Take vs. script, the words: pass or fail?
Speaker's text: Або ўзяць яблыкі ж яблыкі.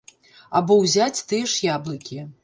fail